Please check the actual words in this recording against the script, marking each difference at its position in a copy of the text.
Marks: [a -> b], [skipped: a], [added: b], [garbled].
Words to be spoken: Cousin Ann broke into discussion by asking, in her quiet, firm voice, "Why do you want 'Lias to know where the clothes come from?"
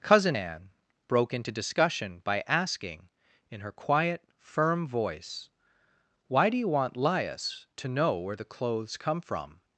Cousin Ann broke into discussion by asking, in her quiet, firm voice, "Why do you want 'Lias to know where the clothes come from?"